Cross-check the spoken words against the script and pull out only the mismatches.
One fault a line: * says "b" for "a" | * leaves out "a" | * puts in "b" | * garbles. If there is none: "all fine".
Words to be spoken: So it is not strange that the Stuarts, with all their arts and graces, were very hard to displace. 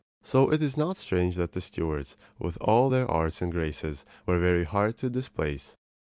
all fine